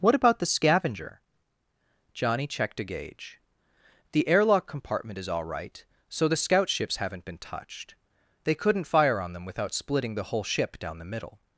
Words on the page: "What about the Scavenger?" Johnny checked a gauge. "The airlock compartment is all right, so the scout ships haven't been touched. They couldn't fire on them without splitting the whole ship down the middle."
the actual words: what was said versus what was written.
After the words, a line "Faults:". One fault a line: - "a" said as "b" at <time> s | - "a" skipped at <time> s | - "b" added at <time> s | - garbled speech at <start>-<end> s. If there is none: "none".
"What about the Scavenger?" Johnny checked a gauge. "The airlock compartment is all right, so the scout ships haven't been touched. They couldn't fire on them without splitting the whole ship down the middle."
Faults:
none